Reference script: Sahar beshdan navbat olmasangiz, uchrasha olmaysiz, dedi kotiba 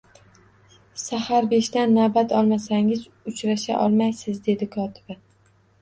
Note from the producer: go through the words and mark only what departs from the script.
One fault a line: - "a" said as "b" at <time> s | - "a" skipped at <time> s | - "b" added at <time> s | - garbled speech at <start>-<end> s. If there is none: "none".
none